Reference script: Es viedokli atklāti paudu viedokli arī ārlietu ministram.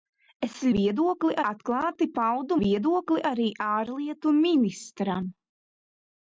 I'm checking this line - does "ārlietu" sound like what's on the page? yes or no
yes